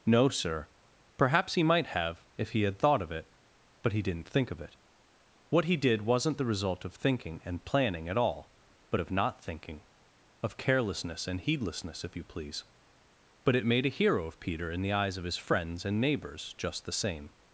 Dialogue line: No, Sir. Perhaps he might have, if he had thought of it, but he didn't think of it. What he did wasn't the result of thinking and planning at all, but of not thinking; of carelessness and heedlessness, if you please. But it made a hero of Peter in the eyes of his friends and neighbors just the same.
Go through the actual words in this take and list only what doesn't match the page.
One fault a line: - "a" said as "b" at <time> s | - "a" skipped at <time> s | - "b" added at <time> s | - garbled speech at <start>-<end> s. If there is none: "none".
none